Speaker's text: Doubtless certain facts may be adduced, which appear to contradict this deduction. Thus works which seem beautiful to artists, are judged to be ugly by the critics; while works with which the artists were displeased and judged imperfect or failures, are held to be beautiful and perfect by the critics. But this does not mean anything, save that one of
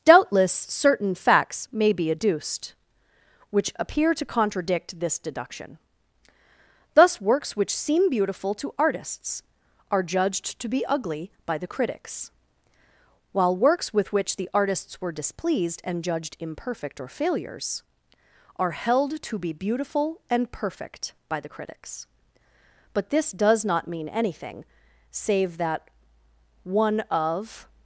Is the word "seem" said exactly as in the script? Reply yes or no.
yes